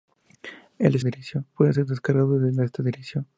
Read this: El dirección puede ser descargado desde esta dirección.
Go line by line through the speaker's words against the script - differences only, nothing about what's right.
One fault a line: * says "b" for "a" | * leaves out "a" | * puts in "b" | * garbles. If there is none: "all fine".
all fine